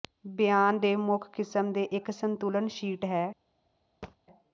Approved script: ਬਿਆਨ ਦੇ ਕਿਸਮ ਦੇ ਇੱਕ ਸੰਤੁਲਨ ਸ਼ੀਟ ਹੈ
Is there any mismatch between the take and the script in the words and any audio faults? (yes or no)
yes